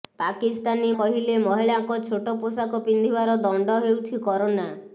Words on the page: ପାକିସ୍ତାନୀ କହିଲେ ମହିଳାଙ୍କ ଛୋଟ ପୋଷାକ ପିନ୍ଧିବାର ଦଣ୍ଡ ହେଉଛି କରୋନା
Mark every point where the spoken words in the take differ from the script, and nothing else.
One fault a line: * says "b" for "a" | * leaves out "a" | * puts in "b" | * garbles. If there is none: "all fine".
all fine